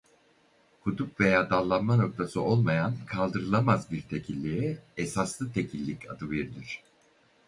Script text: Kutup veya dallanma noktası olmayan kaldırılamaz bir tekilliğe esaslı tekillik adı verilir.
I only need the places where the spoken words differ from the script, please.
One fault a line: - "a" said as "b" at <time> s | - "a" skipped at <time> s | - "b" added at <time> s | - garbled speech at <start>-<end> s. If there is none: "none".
none